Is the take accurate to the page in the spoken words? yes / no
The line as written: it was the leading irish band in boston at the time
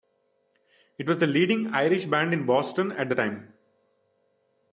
yes